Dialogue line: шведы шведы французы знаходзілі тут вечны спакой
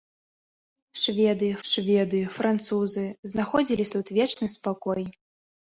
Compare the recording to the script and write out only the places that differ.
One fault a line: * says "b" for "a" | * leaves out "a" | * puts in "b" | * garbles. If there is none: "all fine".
all fine